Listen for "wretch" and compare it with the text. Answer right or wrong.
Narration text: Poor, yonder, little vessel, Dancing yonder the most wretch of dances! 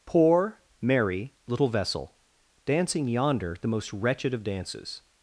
wrong